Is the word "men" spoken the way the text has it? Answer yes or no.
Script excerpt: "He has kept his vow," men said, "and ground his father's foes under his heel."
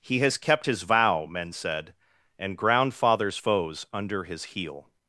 yes